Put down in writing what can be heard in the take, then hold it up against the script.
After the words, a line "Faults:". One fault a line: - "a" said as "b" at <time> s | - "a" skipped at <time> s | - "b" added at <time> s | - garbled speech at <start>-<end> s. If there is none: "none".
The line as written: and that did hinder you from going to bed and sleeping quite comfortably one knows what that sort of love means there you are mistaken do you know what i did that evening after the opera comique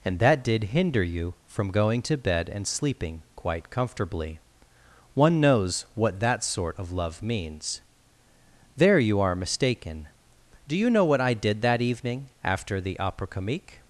and that did hinder you from going to bed and sleeping quite comfortably one knows what that sort of love means there you are mistaken do you know what i did that evening after the opera comique
Faults:
none